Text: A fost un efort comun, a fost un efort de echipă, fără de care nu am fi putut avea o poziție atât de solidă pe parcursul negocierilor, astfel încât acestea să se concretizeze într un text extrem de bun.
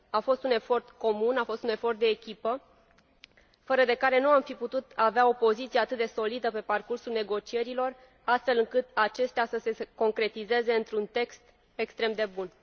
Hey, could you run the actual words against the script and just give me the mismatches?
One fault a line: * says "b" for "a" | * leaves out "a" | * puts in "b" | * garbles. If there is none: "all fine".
all fine